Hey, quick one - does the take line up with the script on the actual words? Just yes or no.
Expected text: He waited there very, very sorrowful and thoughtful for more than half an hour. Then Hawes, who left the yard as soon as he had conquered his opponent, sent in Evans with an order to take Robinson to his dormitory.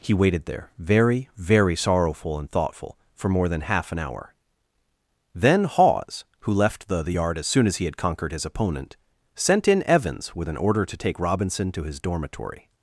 no